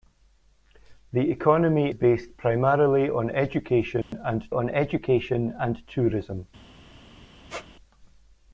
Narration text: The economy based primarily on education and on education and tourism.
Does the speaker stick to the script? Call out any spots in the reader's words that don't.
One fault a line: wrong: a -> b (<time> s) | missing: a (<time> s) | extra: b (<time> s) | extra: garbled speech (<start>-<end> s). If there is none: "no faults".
no faults